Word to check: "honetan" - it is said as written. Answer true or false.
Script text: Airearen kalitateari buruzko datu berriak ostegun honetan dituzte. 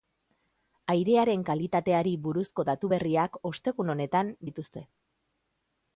true